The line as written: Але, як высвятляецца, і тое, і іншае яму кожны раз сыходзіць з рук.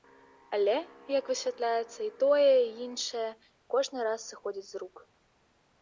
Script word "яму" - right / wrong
wrong